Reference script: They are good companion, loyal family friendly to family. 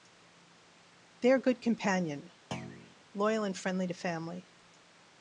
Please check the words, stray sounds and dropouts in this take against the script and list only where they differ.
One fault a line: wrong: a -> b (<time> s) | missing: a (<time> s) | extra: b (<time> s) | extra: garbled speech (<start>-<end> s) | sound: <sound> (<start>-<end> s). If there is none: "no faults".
sound: thud (2.5-3.0 s)
wrong: family -> and (3.4 s)